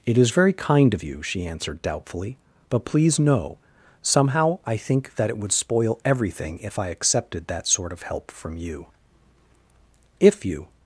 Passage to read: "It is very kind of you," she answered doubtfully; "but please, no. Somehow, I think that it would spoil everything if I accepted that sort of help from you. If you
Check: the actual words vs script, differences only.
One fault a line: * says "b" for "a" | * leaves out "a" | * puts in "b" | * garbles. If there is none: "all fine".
all fine